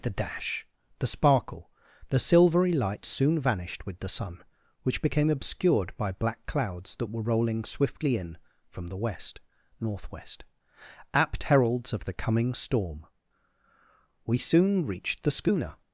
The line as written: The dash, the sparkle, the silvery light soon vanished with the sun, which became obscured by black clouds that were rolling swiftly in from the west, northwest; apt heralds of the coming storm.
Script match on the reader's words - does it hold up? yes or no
no